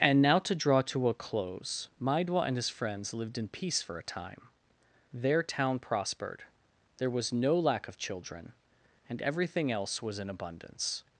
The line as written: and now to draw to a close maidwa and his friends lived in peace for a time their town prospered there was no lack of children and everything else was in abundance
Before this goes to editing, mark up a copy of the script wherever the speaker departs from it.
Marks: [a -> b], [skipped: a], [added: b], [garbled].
and now to draw to a close maidwa and his friends lived in peace for a time their town prospered there was no lack of children and everything else was in abundance